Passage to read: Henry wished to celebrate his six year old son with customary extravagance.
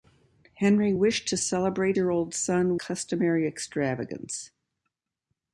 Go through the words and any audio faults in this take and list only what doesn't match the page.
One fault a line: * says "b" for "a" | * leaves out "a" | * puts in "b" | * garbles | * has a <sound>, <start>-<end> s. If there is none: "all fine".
* leaves out "his six"
* leaves out "with"